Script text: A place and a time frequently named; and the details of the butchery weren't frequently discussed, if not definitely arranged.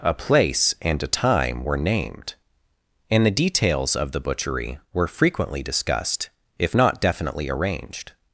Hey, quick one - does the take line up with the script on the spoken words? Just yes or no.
no